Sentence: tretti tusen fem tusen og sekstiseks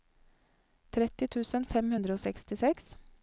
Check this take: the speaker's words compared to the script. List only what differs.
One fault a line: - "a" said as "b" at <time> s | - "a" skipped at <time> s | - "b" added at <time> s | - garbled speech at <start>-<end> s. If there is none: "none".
- "tusen" said as "hundre" at 2.0 s